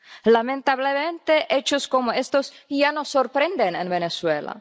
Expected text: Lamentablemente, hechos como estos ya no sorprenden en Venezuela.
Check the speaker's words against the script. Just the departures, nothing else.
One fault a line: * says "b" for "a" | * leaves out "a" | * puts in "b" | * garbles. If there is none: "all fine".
all fine